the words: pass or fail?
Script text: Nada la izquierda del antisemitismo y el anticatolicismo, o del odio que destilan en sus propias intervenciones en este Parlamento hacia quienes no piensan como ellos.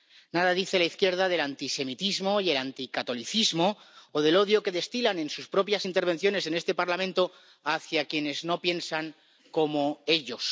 fail